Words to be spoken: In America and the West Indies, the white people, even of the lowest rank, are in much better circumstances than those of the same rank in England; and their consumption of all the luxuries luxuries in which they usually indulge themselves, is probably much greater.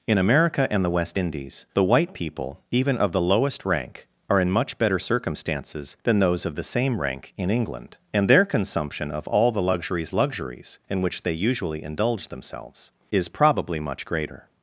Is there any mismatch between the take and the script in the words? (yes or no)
no